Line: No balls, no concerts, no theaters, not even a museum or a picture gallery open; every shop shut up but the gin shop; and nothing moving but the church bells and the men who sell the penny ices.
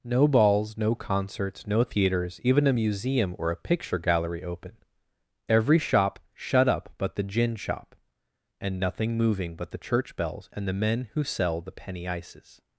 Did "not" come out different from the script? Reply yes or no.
yes